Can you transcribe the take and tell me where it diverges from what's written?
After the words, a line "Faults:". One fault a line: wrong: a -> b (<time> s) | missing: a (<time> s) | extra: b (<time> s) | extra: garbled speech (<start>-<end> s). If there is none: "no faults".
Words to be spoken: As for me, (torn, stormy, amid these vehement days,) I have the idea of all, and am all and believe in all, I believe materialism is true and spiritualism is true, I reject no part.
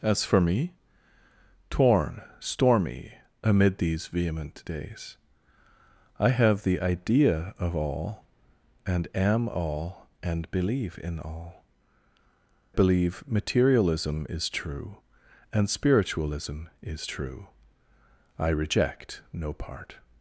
As for me, (torn, stormy, amid these vehement days,) I have the idea of all, and am all and believe in all, believe materialism is true and spiritualism is true, I reject no part.
Faults:
missing: I (11.6 s)